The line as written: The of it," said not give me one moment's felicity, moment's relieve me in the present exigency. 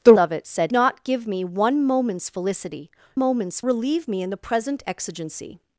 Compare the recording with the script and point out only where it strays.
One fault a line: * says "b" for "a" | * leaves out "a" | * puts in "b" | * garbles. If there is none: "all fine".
all fine